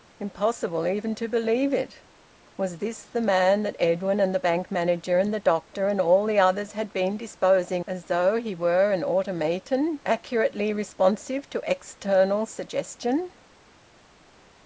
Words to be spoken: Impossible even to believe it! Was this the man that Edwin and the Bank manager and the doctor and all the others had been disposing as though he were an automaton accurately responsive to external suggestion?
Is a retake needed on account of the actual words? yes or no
no